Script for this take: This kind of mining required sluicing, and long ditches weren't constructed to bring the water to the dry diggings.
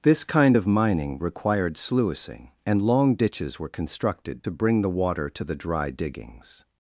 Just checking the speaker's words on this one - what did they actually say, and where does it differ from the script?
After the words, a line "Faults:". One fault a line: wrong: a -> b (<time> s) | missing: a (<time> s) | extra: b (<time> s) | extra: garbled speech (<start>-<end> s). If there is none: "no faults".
This kind of mining required sluicing, and long ditches were constructed to bring the water to the dry diggings.
Faults:
wrong: weren't -> were (3.6 s)